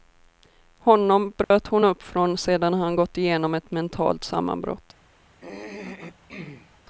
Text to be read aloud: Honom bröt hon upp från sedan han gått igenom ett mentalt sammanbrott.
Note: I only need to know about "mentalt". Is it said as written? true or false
true